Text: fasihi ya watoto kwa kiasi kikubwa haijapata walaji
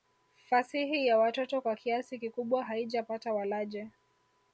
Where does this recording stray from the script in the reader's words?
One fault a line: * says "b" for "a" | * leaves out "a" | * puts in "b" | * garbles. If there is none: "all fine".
all fine